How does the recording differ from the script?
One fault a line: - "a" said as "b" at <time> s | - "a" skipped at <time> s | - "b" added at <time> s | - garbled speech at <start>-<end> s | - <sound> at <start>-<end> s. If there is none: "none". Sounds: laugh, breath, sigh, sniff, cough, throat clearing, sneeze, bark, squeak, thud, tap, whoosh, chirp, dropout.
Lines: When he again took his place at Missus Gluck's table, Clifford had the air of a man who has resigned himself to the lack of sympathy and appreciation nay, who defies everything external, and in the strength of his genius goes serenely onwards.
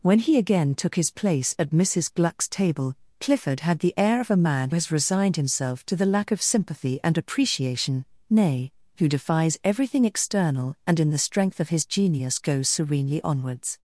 - "who" skipped at 4.7 s